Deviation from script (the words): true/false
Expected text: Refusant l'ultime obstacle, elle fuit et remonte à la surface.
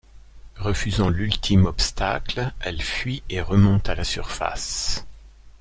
false